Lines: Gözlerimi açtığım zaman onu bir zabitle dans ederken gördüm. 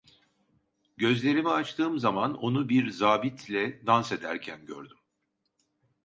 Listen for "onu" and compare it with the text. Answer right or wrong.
right